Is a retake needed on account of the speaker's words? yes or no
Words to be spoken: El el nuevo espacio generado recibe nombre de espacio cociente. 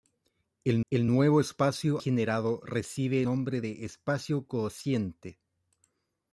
no